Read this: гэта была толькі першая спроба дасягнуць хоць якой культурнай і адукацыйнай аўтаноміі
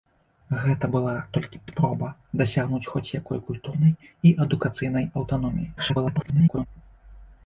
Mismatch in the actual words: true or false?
true